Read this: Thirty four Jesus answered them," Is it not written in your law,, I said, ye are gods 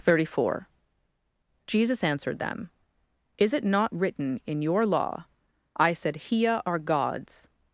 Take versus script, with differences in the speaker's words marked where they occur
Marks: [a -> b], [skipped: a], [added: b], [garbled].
Thirty four Jesus answered them," Is it not written in your law,, I said, [ye -> hia] are gods